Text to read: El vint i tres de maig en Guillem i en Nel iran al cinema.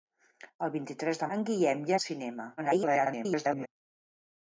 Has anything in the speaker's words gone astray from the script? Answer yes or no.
yes